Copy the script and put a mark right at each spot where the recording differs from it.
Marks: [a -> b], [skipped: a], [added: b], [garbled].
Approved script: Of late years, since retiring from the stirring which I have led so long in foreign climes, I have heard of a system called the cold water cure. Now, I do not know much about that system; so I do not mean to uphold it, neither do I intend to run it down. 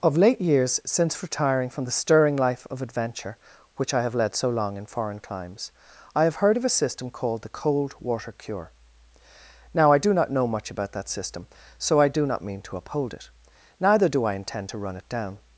Of late years, since retiring from the stirring [added: life of adventure] which I have led so long in foreign climes, I have heard of a system called the cold water cure. Now, I do not know much about that system; so I do not mean to uphold it, neither do I intend to run it down.